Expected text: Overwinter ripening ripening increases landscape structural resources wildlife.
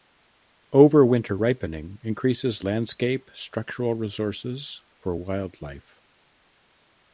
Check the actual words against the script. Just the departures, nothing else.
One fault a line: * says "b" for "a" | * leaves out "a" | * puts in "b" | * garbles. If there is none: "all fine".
* leaves out "ripening"
* puts in "for"